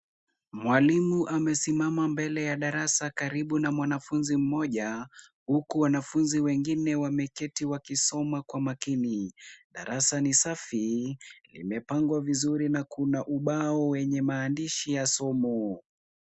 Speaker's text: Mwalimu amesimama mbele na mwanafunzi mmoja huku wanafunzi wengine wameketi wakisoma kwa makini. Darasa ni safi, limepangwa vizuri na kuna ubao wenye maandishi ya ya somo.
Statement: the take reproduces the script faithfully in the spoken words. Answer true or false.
false